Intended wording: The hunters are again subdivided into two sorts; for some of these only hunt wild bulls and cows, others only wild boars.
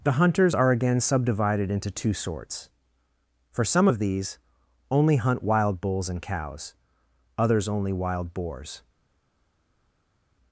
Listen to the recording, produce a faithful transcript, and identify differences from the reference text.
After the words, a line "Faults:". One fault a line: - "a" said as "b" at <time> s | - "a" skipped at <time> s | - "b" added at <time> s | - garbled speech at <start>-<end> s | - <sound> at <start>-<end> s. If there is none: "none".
The hunters are again subdivided into two sorts; for some of these only hunt wild bulls and cows, others only wild boars.
Faults:
none